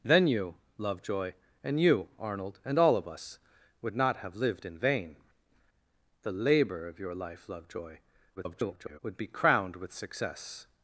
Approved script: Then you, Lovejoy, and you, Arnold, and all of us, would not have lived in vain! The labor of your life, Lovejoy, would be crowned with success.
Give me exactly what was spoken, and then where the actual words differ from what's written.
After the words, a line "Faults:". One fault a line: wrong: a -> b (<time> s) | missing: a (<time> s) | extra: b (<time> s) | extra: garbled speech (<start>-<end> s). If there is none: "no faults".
Then you, Lovejoy, and you, Arnold, and all of us, would not have lived in vain! The labor of your life, Lovejoy, [garbled] would be crowned with success.
Faults:
extra: garbled speech (8.4-9.0 s)